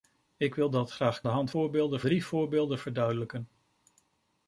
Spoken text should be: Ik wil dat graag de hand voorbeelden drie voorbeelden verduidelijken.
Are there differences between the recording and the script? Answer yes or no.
no